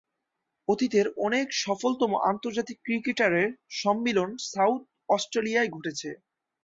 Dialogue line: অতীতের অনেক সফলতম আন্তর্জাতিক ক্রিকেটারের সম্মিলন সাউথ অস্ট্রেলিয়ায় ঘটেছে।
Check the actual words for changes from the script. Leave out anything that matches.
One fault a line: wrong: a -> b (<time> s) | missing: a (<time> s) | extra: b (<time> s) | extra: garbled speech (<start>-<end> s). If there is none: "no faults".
no faults